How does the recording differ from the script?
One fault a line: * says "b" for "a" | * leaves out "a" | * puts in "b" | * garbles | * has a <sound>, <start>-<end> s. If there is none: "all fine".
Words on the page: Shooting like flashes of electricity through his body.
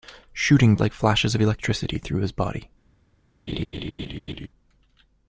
* has a laugh, 3.5-4.5 s